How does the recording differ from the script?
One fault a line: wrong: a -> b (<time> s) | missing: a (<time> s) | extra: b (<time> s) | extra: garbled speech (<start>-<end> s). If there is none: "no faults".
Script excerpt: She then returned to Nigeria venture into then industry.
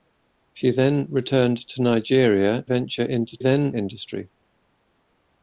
no faults